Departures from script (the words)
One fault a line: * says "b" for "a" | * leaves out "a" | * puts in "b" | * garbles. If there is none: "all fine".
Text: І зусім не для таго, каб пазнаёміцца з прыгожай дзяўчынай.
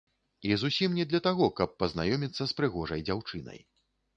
all fine